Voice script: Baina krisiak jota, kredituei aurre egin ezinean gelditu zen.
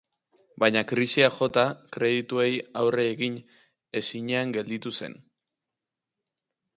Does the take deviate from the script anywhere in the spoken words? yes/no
no